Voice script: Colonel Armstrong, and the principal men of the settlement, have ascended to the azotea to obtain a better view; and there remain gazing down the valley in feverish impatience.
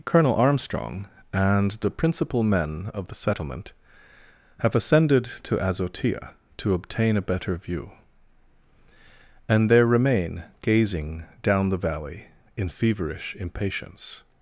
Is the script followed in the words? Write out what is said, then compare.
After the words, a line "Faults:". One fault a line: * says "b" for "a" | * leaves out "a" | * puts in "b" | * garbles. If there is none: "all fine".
Colonel Armstrong, and the principal men of the settlement, have ascended to azotea to obtain a better view; and there remain gazing down the valley in feverish impatience.
Faults:
* leaves out "the"